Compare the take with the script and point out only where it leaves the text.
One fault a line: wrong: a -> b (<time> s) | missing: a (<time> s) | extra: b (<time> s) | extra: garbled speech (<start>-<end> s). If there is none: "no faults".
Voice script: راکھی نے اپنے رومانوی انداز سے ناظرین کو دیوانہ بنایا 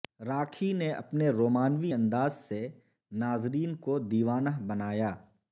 no faults